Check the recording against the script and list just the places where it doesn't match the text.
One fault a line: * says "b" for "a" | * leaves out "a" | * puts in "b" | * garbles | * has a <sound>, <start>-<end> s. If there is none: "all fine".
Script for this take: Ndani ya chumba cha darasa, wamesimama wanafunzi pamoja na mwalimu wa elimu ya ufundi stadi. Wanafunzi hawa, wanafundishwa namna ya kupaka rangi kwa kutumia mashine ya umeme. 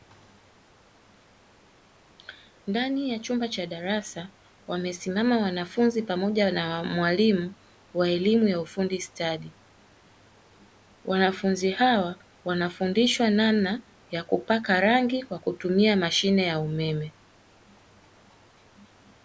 all fine